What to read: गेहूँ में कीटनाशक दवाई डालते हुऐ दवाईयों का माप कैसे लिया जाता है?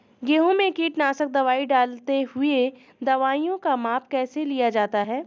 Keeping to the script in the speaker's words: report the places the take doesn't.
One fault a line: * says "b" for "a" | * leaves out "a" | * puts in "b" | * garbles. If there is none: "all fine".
all fine